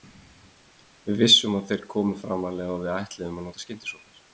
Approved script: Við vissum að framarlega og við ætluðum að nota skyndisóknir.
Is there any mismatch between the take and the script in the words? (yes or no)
yes